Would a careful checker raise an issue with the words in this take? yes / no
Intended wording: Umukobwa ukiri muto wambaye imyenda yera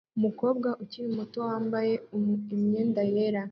no